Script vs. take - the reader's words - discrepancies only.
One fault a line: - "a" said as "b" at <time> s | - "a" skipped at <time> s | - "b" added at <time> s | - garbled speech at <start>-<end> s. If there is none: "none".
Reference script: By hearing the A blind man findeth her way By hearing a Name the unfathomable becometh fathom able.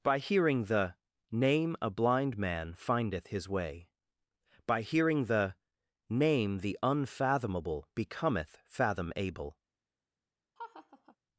- "Name" added at 1.3 s
- "her" said as "his" at 3.3 s
- "a" said as "the" at 5.2 s